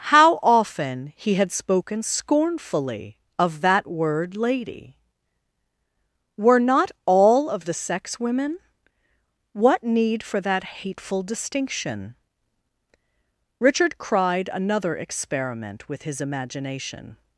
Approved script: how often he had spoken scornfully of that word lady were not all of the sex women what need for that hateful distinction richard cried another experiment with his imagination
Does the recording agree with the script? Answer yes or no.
yes